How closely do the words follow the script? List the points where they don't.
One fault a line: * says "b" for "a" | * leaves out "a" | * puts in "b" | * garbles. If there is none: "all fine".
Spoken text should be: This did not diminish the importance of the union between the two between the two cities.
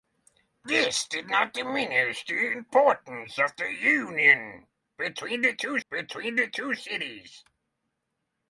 all fine